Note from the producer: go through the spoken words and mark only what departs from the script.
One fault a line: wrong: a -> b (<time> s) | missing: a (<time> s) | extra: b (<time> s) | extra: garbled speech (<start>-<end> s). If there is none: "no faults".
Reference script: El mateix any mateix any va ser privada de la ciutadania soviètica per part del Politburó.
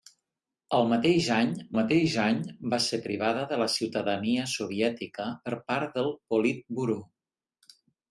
no faults